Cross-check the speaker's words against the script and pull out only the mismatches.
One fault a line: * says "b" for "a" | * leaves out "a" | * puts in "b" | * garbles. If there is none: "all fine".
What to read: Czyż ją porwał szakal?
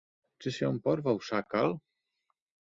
all fine